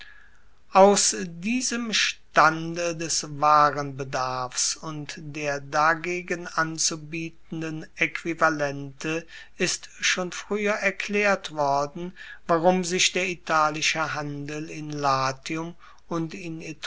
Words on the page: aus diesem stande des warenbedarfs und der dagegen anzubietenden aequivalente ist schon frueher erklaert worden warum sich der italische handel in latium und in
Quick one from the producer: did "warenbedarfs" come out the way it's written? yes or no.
yes